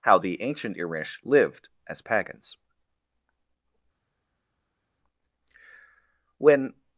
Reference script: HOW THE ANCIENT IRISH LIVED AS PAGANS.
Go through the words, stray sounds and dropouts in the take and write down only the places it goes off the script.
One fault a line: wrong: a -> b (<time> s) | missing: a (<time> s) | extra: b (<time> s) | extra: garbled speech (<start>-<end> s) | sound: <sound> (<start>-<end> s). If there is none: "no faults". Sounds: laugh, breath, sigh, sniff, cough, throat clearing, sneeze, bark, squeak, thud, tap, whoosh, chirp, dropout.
extra: When (6.4 s)